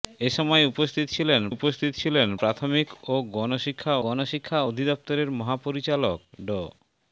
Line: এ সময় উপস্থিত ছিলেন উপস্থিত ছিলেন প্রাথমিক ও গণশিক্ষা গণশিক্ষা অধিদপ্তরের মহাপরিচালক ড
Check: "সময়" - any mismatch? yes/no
no